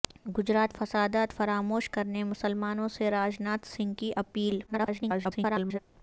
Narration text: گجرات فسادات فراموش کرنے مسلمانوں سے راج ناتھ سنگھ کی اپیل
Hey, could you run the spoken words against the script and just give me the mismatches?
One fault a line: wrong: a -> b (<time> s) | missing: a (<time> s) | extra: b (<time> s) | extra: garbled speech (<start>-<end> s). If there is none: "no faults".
extra: garbled speech (4.7-5.8 s)